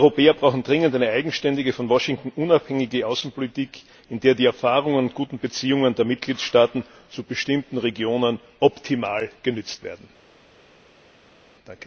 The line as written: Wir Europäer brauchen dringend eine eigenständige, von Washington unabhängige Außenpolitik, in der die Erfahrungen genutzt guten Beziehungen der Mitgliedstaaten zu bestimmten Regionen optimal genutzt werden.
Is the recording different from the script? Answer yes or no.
yes